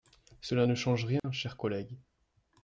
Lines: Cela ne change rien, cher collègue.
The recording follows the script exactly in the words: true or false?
true